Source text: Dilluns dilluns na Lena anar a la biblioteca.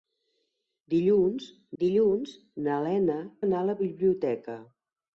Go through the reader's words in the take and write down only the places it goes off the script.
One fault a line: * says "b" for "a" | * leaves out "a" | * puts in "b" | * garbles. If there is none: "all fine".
all fine